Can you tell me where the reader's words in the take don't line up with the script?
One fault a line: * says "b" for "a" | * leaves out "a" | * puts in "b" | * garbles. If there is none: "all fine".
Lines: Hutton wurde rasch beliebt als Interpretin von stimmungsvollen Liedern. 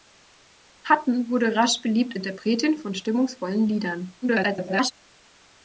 * leaves out "als"
* garbles